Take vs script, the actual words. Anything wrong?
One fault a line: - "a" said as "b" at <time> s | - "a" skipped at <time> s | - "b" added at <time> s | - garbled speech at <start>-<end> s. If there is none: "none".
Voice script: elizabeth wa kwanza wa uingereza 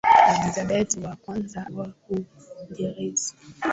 none